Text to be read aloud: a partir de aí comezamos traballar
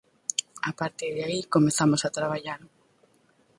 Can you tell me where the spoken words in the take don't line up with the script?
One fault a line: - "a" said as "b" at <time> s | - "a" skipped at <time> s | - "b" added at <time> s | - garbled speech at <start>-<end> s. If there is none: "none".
- "a" added at 2.0 s